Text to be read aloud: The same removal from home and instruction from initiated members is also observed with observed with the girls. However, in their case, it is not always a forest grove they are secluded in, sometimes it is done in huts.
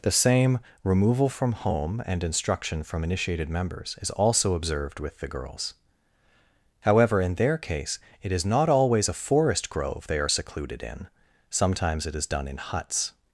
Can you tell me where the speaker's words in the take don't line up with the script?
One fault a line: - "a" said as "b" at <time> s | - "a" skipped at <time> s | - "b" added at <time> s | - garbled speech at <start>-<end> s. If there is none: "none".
- "observed with" skipped at 5.2 s